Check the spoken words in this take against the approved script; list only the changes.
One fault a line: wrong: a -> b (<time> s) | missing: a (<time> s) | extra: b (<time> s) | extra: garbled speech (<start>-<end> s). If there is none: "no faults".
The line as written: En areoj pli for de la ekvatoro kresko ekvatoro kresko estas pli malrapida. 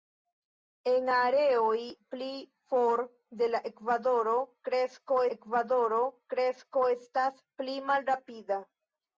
no faults